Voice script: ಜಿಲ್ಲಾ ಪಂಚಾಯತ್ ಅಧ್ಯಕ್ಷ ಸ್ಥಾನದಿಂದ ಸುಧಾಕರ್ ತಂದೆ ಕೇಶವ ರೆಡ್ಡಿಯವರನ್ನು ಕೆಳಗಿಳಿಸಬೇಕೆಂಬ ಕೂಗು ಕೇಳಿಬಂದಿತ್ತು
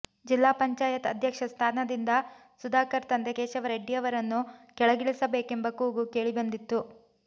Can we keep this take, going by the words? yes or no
yes